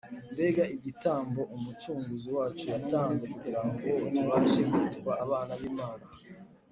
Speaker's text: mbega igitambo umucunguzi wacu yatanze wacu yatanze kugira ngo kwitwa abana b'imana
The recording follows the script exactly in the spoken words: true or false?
false